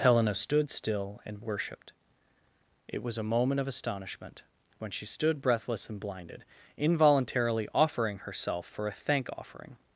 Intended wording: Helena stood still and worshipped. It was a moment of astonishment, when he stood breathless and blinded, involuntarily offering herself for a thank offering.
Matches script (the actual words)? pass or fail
fail